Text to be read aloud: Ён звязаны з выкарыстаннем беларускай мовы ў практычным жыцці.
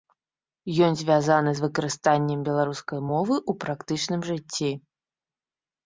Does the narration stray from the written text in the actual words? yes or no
no